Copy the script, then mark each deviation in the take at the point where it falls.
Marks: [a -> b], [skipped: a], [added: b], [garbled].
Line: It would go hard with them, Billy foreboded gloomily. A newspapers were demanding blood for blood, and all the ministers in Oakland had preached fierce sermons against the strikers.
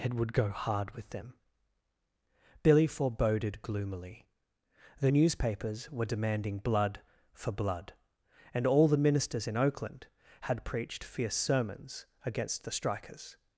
It would go hard with them, Billy foreboded gloomily. [A -> The] newspapers were demanding blood for blood, and all the ministers in Oakland had preached fierce sermons against the strikers.